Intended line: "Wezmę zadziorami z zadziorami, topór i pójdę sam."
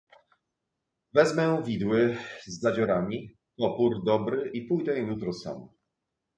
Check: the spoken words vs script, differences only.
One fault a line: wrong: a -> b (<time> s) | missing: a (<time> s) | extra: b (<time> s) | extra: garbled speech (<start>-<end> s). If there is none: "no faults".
wrong: zadziorami -> widły (1.6 s)
extra: dobry (4.0 s)
extra: jutro (5.0 s)